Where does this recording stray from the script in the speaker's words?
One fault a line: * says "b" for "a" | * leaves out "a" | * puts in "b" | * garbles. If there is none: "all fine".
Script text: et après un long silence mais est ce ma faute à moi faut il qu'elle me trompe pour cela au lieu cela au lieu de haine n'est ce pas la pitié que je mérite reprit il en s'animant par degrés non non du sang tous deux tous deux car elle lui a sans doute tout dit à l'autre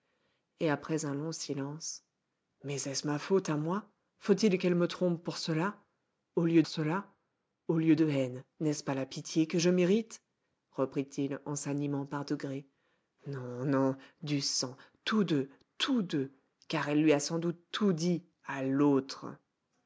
all fine